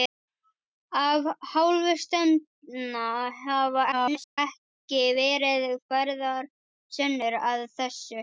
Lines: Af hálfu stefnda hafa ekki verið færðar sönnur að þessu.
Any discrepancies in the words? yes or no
yes